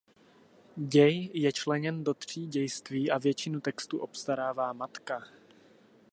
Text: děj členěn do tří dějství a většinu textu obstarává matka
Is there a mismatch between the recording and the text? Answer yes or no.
yes